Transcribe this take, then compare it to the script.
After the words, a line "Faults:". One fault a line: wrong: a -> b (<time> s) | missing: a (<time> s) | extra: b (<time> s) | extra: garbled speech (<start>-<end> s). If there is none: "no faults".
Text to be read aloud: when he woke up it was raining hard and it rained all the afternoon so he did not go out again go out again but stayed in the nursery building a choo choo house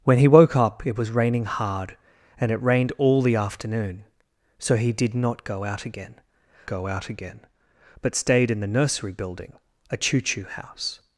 when he woke up it was raining hard and it rained all the afternoon so he did not go out again go out again but stayed in the nursery building a choo choo house
Faults:
no faults